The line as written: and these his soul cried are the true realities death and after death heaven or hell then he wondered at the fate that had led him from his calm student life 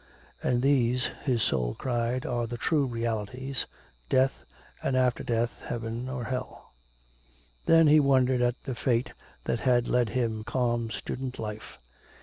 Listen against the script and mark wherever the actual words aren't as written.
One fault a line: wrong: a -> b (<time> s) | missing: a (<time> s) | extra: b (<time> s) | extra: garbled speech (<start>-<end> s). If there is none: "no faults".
missing: from his (10.4 s)